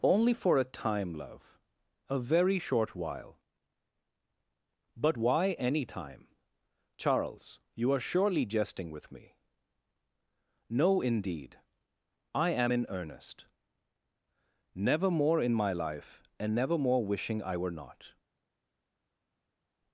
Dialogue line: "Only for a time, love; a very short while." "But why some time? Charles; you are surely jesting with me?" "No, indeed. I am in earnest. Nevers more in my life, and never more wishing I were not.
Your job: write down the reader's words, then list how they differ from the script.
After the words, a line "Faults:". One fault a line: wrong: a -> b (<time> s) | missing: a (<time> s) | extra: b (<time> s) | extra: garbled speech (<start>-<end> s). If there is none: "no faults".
"Only for a time, love; a very short while." "But why any time? Charles; you are surely jesting with me?" "No, indeed. I am in earnest. Never more in my life, and never more wishing I were not.
Faults:
wrong: some -> any (5.5 s)
wrong: Nevers -> Never (14.7 s)